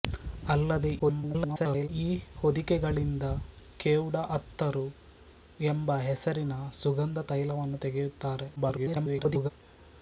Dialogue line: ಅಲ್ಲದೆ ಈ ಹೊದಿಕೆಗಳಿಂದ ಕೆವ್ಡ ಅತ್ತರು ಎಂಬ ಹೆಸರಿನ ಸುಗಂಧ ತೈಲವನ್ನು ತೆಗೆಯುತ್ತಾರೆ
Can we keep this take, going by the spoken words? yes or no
no